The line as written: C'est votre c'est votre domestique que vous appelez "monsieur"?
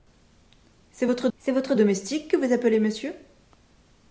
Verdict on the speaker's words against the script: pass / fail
pass